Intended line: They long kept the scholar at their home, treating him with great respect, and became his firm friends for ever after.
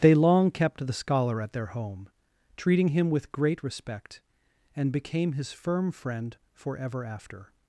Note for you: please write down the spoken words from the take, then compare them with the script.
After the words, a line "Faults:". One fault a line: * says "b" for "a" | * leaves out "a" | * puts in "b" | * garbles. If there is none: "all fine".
They long kept the scholar at their home, treating him with great respect, and became his firm friend for ever after.
Faults:
* says "friend" for "friends"